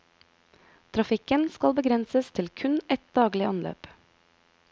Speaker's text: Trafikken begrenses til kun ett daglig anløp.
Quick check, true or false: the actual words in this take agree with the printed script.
false